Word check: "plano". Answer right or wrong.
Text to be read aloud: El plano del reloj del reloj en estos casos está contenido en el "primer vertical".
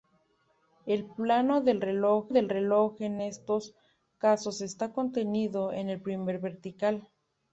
right